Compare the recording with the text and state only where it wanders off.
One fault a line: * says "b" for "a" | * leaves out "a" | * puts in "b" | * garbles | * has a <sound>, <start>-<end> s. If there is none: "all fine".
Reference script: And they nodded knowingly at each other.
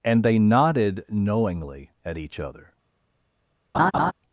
* has a laugh, 3.7-4.1 s